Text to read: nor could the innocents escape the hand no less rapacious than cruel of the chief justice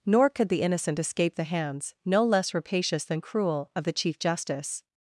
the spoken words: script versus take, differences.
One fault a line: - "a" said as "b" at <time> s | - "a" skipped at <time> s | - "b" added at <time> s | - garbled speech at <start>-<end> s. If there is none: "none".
- "innocents" said as "innocent" at 0.6 s
- "hand" said as "hands" at 1.4 s